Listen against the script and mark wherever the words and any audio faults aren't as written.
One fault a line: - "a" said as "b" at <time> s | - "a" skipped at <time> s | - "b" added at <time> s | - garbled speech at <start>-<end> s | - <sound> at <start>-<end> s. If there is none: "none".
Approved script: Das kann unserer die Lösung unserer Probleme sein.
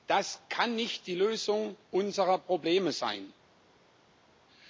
- "unserer" said as "nicht" at 0.8 s